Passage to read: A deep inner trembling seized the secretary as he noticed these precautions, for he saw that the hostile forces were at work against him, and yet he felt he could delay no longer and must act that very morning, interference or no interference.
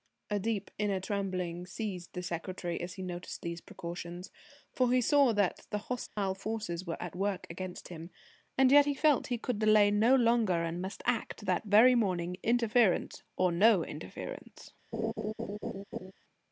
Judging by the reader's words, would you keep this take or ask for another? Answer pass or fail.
pass